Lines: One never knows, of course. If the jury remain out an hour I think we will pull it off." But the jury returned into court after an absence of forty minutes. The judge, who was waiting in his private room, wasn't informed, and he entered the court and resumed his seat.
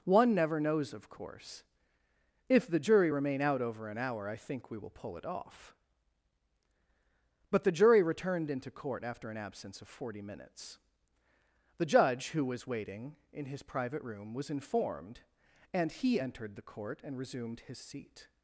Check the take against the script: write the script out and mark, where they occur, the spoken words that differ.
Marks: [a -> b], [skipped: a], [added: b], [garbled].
One never knows, of course. If the jury remain out [added: over] an hour I think we will pull it off." But the jury returned into court after an absence of forty minutes. The judge, who was waiting in his private room, [wasn't -> was] informed, and he entered the court and resumed his seat.